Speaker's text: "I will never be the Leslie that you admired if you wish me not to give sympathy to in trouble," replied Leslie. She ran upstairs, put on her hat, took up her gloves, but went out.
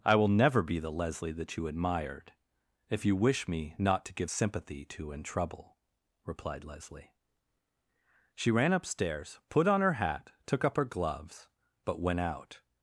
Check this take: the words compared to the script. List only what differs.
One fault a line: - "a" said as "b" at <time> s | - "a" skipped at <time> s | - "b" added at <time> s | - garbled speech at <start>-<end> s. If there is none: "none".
none